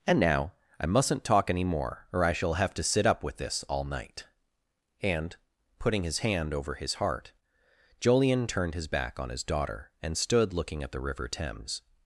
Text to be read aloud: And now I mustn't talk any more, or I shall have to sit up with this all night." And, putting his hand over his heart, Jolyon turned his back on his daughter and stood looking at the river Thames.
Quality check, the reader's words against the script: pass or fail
pass